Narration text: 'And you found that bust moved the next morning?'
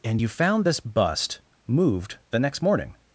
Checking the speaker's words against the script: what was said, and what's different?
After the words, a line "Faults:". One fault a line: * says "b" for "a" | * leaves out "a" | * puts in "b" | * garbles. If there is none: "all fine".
'And you found this bust moved the next morning?'
Faults:
* says "this" for "that"